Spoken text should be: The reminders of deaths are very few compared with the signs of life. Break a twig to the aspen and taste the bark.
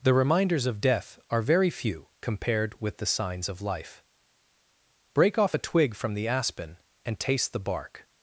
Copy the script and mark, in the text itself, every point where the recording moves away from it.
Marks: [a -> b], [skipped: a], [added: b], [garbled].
The reminders of [deaths -> death] are very few compared with the signs of life. Break [added: off] a twig [to -> from] the aspen and taste the bark.